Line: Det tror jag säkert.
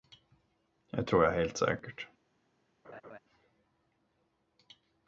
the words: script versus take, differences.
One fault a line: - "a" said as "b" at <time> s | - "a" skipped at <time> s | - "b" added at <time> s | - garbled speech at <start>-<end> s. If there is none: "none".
- "helt" added at 1.3 s